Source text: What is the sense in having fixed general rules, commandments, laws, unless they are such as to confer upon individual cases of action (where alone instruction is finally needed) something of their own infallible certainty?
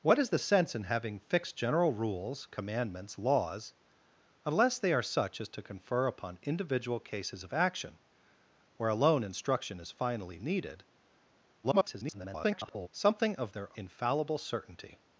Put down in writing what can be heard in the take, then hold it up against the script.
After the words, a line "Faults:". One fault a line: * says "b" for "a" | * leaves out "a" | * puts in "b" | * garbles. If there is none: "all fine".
What is the sense in having fixed general rules, commandments, laws, unless they are such as to confer upon individual cases of action (where alone instruction is finally needed) [garbled] something of their infallible certainty?
Faults:
* garbles
* leaves out "own"